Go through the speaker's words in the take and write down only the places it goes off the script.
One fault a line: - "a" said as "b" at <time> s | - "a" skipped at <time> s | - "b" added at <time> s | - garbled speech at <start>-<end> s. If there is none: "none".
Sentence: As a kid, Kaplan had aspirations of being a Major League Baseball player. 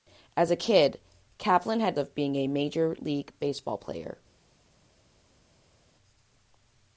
- "aspirations" skipped at 1.9 s